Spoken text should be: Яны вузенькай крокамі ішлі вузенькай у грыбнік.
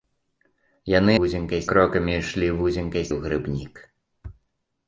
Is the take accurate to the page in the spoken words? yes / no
yes